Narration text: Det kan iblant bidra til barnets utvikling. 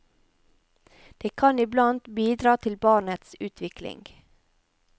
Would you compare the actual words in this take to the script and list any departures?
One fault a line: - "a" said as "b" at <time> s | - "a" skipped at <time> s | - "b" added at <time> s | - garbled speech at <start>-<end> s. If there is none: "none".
none